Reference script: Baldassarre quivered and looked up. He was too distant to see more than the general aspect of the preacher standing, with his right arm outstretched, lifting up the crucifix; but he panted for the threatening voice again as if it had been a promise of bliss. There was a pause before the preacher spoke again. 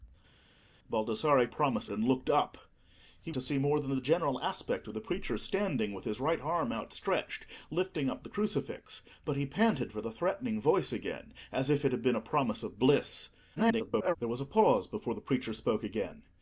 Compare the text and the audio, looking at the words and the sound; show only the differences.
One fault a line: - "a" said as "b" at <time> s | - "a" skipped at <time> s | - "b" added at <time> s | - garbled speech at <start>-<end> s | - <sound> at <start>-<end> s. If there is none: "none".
- "quivered" said as "promise" at 1.5 s
- "was too distant" skipped at 3.3 s
- garbled speech at 13.6-14.2 s